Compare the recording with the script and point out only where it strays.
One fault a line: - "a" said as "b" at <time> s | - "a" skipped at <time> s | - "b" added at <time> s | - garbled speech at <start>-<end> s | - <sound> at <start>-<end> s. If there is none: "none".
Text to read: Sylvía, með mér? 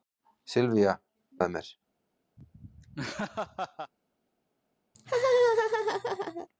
- laugh at 2.4-3.9 s
- laugh at 4.9-6.5 s